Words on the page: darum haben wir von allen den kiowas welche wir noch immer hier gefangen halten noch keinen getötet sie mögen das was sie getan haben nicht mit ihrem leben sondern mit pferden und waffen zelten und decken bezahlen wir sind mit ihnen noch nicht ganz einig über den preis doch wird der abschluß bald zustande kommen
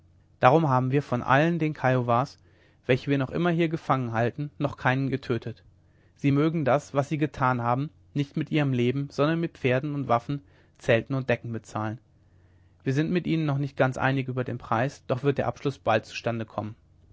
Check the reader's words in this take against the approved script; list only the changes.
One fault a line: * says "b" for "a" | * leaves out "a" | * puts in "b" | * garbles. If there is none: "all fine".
all fine